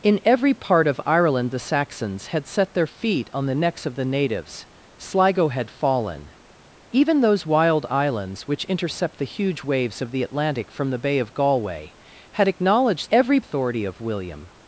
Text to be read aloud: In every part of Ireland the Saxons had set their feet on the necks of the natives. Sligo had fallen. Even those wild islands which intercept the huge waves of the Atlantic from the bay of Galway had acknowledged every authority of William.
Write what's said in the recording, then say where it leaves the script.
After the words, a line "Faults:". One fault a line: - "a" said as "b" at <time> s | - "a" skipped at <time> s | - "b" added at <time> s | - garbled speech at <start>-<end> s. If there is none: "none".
In every part of Ireland the Saxons had set their feet on the necks of the natives. Sligo had fallen. Even those wild islands which intercept the huge waves of the Atlantic from the bay of Galway had acknowledged every authority of William.
Faults:
none